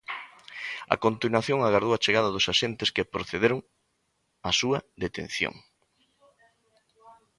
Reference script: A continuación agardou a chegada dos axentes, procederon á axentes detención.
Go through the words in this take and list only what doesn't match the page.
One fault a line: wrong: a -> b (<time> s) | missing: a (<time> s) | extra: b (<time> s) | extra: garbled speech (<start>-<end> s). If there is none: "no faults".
extra: que (3.0 s)
wrong: axentes -> súa (4.6 s)